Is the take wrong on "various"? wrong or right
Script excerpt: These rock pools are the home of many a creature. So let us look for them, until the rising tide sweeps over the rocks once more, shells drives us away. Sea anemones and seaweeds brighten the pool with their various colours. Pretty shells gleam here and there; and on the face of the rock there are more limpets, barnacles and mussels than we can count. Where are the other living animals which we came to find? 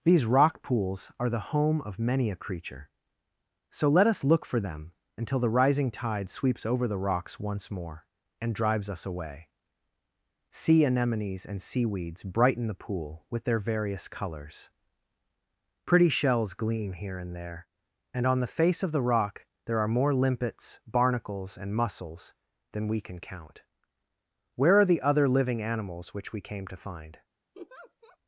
right